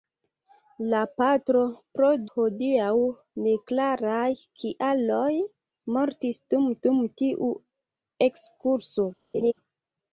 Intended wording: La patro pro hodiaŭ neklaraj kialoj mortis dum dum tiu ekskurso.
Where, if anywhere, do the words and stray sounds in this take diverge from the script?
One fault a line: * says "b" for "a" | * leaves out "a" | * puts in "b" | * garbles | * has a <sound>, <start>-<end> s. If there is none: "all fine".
* has a laugh, 9.3-9.5 s